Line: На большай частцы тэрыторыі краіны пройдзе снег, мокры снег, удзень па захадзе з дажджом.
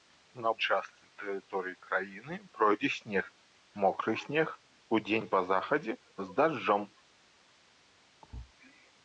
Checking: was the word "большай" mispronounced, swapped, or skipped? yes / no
yes